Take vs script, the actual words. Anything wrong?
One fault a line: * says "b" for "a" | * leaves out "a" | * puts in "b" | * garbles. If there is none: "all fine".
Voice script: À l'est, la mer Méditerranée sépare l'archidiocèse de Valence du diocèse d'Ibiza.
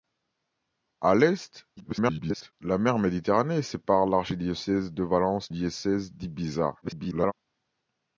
* garbles
* leaves out "du"
* garbles